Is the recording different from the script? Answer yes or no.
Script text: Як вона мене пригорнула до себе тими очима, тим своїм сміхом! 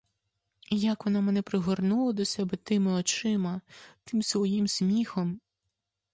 no